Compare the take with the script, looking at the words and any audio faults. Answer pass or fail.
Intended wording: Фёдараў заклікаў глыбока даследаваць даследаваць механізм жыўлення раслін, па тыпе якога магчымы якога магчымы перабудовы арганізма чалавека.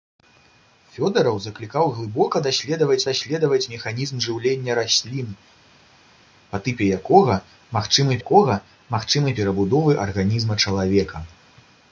pass